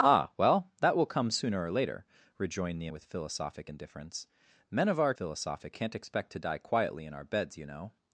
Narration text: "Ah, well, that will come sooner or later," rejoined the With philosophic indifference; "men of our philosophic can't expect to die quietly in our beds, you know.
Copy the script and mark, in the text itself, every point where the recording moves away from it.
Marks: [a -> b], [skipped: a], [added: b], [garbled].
"Ah, well, that will come sooner or later," rejoined the With philosophic indifference; "men of our philosophic can't expect to die quietly in our beds, you know.